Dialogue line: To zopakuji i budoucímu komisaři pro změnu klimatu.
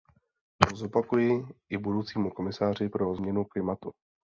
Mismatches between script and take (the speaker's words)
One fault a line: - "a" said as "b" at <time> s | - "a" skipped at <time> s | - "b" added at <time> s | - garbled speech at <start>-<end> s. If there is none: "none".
none